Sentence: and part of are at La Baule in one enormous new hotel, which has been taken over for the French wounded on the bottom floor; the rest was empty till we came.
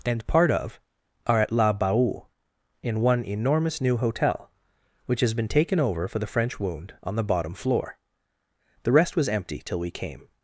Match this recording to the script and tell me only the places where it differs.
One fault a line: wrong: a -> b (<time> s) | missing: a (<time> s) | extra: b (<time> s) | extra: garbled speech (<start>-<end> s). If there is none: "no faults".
wrong: wounded -> wound (6.6 s)